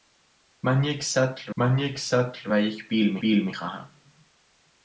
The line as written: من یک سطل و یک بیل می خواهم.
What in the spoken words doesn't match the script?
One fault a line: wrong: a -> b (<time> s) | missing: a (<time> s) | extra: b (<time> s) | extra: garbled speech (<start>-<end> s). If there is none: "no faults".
extra: من یک سطل (1.6 s)
extra: بیل می (3.2 s)